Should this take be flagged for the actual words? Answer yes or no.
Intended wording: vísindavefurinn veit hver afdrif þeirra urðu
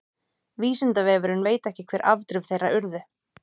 yes